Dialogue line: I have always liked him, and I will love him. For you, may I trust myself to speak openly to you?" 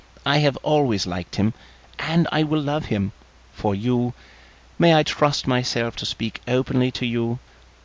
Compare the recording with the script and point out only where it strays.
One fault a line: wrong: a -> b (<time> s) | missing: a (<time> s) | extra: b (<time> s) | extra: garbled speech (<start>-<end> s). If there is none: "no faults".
no faults